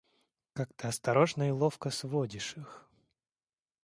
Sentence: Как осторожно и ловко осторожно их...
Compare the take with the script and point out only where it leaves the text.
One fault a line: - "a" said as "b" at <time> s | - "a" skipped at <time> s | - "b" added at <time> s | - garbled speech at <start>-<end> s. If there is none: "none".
- "ты" added at 0.7 s
- "осторожно" said as "сводишь" at 1.9 s